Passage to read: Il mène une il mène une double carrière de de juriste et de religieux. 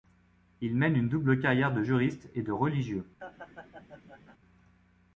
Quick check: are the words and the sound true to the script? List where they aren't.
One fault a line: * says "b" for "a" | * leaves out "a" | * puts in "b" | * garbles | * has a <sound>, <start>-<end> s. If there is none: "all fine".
* leaves out "il mène une"
* leaves out "de"
* has a laugh, 3.2-4.4 s